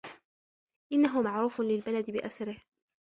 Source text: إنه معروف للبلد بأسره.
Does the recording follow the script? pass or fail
pass